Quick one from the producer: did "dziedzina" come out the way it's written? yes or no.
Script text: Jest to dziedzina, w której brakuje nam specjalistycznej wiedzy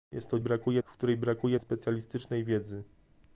no